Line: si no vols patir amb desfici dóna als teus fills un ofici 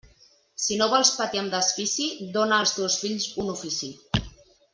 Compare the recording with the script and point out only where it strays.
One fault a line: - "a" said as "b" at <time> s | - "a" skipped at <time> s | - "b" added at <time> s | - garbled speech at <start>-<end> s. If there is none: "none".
none